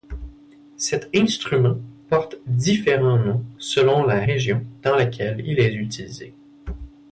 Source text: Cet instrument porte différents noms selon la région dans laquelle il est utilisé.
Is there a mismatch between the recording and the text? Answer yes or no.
no